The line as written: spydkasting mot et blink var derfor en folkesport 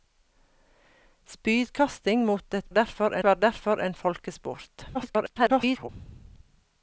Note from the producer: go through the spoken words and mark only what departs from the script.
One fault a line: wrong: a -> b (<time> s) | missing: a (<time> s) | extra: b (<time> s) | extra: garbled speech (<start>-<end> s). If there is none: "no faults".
wrong: blink -> derfor (2.7 s)
extra: garbled speech (4.9-5.9 s)